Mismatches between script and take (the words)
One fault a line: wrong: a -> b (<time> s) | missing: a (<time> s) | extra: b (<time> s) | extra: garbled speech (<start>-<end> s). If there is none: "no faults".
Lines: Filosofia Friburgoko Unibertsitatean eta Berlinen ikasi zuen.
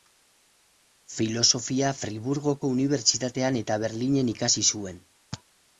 no faults